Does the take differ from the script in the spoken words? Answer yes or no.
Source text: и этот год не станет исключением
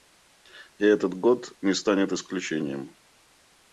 no